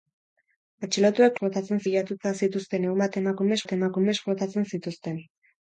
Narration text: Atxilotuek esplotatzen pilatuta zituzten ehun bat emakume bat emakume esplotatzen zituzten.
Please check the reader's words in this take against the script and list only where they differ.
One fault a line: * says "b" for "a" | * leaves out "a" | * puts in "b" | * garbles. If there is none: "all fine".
all fine